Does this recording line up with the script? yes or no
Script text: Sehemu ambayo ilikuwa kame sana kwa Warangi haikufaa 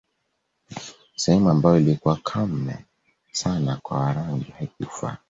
yes